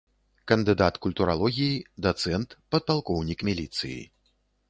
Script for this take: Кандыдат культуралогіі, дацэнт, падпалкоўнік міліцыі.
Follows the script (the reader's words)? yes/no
yes